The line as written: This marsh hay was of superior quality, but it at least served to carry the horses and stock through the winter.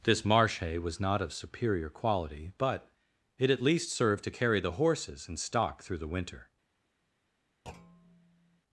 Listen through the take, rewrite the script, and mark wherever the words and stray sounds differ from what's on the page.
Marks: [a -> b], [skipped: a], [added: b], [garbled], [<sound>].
This marsh hay was [added: not] of superior quality, but it at least served to carry the horses and stock through the winter. [thud]